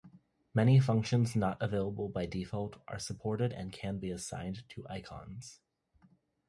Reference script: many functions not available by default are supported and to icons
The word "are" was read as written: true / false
true